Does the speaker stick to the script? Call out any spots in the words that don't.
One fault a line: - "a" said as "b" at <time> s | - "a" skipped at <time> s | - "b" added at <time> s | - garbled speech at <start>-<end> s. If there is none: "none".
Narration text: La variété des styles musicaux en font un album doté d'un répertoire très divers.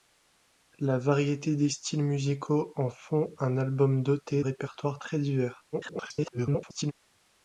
- "d'un" skipped at 4.4 s
- garbled speech at 5.7-6.9 s